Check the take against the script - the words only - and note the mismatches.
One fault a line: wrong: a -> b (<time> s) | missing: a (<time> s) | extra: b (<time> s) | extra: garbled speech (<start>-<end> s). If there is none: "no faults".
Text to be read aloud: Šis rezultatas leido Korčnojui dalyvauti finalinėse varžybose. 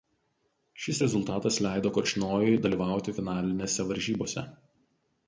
no faults